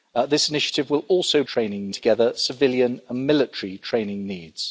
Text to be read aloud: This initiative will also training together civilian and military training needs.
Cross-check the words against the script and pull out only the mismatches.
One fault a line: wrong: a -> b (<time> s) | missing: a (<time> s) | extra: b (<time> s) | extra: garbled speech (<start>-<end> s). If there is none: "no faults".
no faults